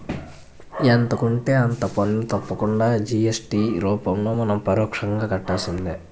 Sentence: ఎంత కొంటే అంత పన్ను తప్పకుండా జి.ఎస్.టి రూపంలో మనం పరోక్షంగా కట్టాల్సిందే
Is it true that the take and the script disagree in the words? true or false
false